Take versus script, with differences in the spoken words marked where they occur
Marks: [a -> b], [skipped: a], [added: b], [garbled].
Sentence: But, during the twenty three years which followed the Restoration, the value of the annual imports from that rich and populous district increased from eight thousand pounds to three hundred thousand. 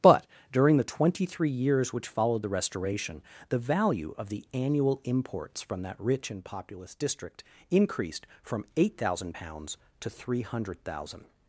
But, during the twenty three years which followed the Restoration, the value of the annual imports from that rich and populous district increased from eight thousand pounds to three hundred thousand.